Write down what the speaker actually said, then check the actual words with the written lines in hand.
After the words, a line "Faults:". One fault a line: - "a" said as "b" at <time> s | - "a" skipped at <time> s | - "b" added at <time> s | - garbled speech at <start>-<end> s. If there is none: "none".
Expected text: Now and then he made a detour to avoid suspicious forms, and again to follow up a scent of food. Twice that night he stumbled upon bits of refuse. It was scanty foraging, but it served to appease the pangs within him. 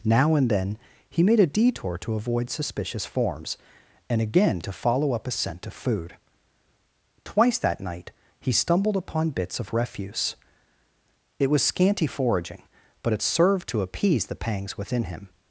Now and then he made a detour to avoid suspicious forms, and again to follow up a scent of food. Twice that night he stumbled upon bits of refuse. It was scanty foraging, but it served to appease the pangs within him.
Faults:
none